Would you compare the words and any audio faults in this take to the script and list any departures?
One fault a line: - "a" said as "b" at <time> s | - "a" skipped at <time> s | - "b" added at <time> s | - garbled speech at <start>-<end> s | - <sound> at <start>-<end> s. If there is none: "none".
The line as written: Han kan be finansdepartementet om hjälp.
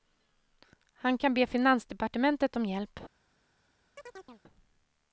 - chirp at 4.0-4.4 s